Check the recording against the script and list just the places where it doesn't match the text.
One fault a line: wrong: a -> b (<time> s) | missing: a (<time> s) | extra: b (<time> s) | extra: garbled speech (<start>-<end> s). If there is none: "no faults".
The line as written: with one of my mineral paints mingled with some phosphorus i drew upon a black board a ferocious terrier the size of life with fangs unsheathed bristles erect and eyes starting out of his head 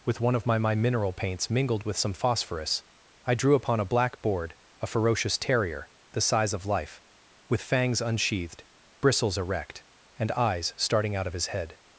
extra: my (0.6 s)